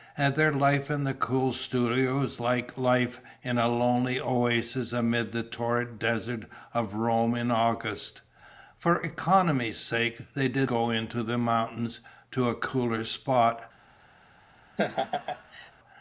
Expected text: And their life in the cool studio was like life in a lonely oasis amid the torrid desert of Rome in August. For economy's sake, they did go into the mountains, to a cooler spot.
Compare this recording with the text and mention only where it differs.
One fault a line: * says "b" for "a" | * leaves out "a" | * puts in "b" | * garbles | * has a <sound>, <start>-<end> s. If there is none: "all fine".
* has a laugh, 14.8-15.7 s